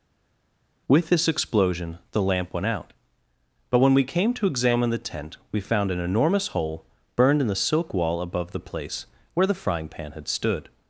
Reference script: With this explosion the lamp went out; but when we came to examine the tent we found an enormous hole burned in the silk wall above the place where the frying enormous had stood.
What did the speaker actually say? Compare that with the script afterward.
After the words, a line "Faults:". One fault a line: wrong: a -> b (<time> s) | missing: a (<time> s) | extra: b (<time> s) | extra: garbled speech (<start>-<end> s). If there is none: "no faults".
With this explosion the lamp went out; but when we came to examine the tent we found an enormous hole burned in the silk wall above the place where the frying pan had stood.
Faults:
wrong: enormous -> pan (9.9 s)